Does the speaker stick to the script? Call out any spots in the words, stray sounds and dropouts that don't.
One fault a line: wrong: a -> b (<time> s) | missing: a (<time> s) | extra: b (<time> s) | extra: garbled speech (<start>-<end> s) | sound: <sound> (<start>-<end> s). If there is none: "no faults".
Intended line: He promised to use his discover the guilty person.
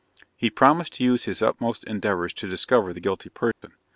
extra: utmost endeavours to (1.4 s)
sound: dropout (3.5-3.6 s)